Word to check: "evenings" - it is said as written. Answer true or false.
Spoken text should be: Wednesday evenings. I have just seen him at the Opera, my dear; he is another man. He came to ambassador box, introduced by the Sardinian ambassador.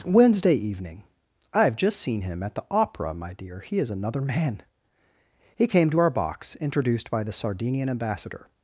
false